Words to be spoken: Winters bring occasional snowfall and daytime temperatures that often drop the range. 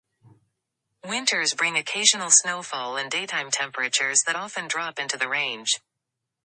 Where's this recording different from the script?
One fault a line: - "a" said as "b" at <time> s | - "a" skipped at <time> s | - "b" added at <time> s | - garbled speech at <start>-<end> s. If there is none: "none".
- "into" added at 5.0 s